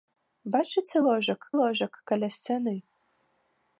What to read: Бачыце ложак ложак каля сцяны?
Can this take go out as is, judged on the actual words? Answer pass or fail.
pass